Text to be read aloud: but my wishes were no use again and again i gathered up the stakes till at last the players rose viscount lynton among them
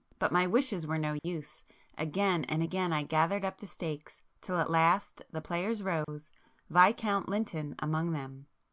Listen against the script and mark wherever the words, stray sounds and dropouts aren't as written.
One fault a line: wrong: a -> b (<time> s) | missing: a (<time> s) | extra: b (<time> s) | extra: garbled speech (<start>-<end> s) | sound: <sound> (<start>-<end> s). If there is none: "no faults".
sound: dropout (1.2-1.2 s)
sound: dropout (6.0-6.1 s)